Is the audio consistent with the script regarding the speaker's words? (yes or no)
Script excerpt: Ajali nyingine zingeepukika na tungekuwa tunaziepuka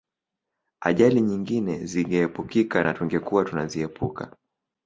yes